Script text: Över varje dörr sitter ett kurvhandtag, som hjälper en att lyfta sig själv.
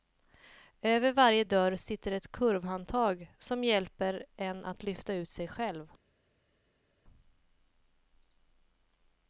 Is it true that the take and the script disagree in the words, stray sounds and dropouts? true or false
true